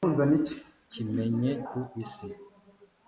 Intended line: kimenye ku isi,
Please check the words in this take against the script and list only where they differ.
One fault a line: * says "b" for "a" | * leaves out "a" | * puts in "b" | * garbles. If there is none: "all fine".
all fine